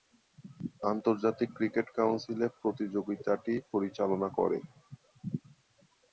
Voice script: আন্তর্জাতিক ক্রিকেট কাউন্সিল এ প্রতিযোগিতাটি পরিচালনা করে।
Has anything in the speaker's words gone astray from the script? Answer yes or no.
no